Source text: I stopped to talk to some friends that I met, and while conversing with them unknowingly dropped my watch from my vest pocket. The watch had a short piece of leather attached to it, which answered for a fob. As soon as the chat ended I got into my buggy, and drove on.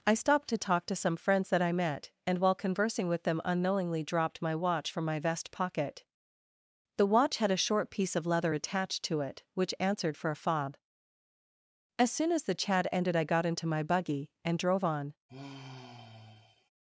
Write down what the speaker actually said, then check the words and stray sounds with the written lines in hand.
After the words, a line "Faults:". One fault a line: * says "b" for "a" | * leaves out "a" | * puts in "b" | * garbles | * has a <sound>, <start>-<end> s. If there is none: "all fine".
I stopped to talk to some friends that I met, and while conversing with them unknowingly dropped my watch from my vest pocket. The watch had a short piece of leather attached to it, which answered for a fob. As soon as the chat ended I got into my buggy, and drove on.
Faults:
* has a sigh, 15.3-16.7 s